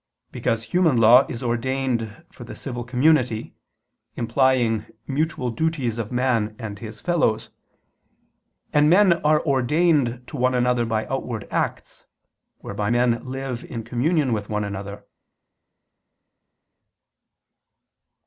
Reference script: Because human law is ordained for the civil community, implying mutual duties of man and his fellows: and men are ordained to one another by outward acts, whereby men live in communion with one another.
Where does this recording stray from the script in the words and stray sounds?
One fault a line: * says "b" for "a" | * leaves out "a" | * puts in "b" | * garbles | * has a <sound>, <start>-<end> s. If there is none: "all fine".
all fine